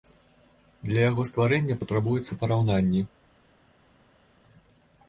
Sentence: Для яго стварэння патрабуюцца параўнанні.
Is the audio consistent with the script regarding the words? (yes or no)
yes